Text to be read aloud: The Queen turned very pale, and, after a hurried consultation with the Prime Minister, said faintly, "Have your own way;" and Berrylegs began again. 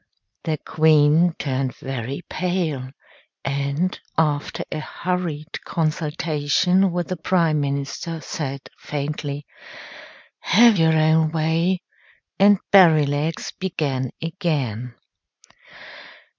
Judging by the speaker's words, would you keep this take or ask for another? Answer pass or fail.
pass